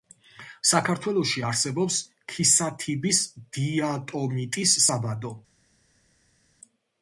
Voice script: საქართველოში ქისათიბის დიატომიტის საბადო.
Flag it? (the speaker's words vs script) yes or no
yes